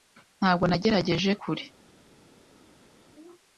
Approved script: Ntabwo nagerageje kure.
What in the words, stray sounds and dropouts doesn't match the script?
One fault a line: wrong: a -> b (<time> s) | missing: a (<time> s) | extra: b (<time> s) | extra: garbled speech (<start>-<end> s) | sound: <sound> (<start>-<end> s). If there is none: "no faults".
no faults